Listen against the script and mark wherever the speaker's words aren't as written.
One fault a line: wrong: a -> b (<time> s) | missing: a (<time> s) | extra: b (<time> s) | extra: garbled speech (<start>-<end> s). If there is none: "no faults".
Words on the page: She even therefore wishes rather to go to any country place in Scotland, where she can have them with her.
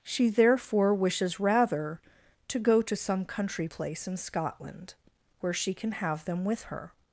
missing: even (0.3 s)
wrong: any -> some (3.0 s)